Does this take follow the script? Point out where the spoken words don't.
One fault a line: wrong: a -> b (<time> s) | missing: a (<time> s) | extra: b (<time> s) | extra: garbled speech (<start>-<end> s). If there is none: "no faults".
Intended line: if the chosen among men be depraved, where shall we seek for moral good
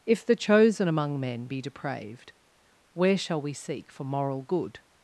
no faults